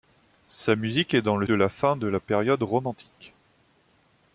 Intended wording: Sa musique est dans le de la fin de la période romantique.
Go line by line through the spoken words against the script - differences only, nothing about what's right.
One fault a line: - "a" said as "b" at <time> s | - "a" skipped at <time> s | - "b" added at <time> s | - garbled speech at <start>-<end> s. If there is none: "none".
none